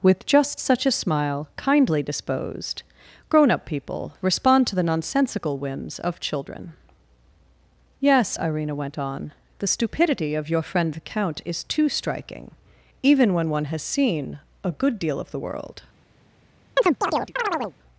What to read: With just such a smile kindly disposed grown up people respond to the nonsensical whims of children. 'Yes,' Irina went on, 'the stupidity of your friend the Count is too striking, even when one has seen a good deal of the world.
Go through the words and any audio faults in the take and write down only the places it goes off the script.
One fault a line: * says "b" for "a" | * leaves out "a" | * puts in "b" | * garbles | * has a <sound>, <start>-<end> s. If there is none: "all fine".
* has a chirp, 16.8-17.8 s